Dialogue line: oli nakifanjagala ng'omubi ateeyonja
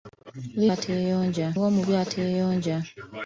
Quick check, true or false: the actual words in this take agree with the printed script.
false